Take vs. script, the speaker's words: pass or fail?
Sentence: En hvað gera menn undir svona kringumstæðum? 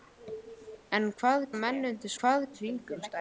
fail